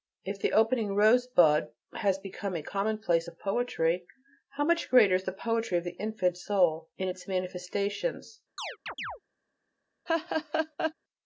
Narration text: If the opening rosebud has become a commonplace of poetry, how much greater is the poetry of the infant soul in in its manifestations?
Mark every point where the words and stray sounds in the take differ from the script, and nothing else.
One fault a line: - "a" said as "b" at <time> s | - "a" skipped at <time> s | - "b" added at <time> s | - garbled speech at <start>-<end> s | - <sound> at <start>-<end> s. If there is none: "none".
- "in" skipped at 7.1 s
- chirp at 8.6-9.2 s
- laugh at 10.1-10.9 s